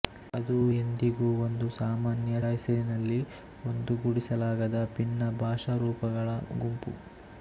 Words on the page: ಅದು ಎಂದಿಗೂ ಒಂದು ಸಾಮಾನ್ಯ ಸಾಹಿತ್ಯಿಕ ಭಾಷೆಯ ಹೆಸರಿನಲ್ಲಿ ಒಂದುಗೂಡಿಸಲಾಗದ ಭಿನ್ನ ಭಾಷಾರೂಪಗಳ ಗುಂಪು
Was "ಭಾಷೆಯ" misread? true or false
true